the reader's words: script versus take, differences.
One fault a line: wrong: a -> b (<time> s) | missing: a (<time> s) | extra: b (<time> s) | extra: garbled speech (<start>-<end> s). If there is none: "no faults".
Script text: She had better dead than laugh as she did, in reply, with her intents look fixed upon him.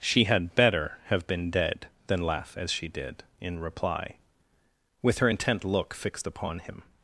extra: have been (1.1 s)
wrong: intents -> intent (5.3 s)